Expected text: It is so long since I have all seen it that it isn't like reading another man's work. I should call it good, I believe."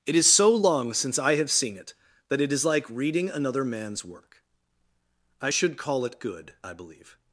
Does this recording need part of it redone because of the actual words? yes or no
yes